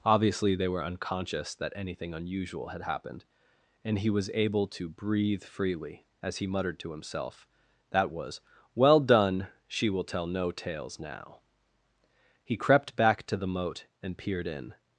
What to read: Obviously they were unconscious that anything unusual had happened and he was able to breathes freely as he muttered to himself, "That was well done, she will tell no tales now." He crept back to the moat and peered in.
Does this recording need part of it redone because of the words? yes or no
yes